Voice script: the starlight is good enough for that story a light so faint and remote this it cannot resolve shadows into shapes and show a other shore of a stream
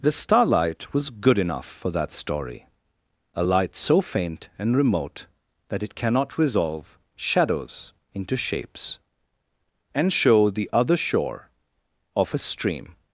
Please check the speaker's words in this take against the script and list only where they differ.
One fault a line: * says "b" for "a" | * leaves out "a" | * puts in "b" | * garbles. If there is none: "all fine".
* says "was" for "is"
* says "that" for "this"
* says "the" for "a"